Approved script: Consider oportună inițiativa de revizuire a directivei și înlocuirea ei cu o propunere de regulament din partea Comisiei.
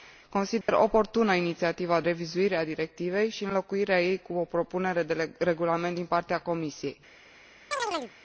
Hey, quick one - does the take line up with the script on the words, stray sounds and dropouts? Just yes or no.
no